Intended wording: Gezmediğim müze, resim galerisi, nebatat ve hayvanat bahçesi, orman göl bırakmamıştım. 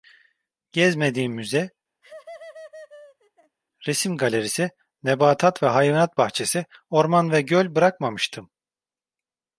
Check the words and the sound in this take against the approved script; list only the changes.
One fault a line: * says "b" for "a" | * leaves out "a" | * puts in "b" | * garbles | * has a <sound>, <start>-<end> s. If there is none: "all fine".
* has a laugh, 2.0-3.6 s
* puts in "ve"